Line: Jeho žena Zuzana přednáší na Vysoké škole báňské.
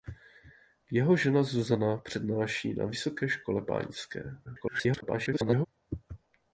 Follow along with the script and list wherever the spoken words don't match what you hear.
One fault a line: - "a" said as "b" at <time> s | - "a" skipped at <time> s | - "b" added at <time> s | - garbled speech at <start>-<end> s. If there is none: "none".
- garbled speech at 4.4-5.7 s